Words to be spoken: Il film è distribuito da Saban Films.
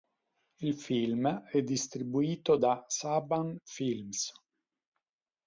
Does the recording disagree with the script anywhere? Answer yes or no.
no